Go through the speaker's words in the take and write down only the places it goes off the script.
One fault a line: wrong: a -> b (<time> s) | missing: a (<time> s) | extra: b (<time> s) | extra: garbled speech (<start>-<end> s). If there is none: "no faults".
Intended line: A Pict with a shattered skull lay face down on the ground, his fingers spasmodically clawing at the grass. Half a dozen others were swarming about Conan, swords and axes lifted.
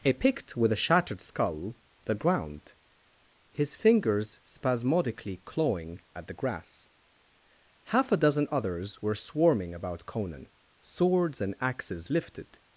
missing: lay face down on (1.8 s)